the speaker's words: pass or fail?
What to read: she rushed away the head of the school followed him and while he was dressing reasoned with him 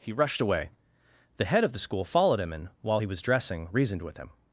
fail